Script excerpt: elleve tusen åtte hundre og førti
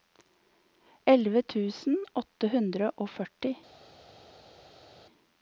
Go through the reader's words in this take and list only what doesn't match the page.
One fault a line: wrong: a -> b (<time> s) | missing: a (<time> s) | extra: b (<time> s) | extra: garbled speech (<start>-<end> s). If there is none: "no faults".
no faults